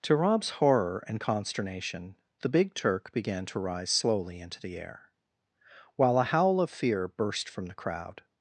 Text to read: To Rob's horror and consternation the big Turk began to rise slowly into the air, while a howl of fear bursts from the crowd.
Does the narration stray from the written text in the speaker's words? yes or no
yes